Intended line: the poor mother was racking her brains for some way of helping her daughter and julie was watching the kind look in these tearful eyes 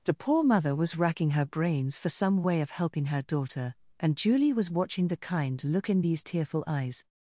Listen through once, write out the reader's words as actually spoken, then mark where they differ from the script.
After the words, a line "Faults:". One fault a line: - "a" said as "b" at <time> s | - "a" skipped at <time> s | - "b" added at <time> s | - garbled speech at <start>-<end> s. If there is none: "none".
the poor mother was racking her brains for some way of helping her daughter and julie was watching the kind look in these tearful eyes
Faults:
none